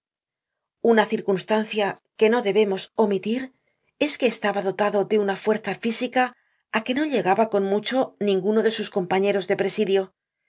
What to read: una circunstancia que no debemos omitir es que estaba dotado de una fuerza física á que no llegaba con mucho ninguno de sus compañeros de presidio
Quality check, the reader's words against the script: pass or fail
pass